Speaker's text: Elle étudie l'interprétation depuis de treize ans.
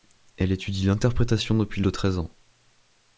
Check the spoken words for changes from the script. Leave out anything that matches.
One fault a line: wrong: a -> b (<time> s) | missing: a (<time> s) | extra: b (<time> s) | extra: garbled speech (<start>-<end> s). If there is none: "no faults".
no faults